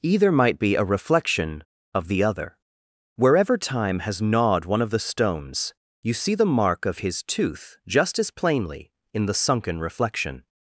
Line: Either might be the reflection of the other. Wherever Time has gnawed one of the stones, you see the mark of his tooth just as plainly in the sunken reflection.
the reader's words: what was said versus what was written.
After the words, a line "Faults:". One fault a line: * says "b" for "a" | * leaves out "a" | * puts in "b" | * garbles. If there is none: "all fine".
Either might be a reflection of the other. Wherever Time has gnawed one of the stones, you see the mark of his tooth just as plainly in the sunken reflection.
Faults:
* says "a" for "the"